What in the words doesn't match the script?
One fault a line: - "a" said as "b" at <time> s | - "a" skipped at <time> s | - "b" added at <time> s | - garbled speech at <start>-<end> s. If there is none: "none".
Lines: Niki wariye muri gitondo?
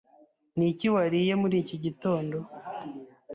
- "iki" added at 1.6 s